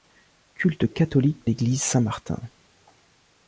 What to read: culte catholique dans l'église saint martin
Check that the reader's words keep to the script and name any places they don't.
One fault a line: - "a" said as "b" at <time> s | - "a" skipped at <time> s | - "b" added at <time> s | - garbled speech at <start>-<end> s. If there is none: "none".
- "dans" skipped at 1.4 s